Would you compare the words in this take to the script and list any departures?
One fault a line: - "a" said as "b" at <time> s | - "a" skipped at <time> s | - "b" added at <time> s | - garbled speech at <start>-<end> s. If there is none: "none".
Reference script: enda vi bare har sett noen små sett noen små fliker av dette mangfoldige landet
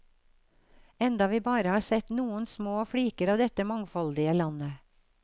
- "sett noen små" skipped at 2.9 s